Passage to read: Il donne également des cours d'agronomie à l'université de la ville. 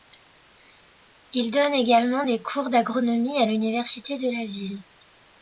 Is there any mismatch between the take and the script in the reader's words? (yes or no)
no